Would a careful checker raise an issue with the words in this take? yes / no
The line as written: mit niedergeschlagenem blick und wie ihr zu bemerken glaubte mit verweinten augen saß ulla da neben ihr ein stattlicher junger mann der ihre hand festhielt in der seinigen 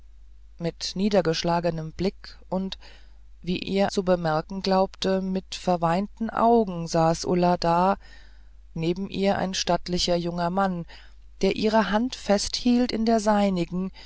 no